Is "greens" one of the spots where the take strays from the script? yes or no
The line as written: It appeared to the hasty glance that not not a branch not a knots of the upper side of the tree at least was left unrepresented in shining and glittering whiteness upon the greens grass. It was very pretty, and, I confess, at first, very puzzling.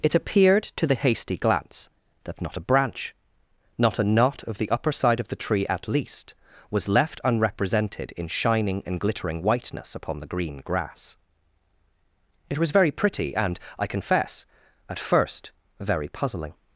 yes